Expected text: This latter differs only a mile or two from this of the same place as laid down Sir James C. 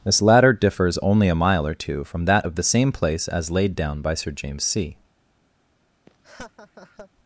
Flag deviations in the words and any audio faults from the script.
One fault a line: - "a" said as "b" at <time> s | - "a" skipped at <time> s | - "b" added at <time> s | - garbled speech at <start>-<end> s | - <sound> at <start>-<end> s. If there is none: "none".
- "this" said as "that" at 2.2 s
- "by" added at 4.0 s
- laugh at 6.1-7.1 s